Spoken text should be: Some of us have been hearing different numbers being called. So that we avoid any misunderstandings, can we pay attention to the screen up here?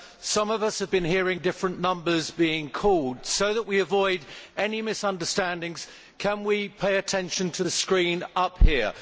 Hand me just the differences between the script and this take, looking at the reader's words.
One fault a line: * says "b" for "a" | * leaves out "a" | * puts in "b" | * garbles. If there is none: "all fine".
all fine